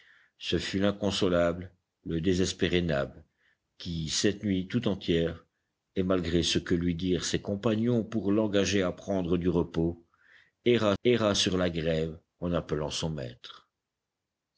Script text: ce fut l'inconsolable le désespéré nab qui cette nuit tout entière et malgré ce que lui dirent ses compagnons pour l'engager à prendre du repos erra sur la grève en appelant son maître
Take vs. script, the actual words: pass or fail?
fail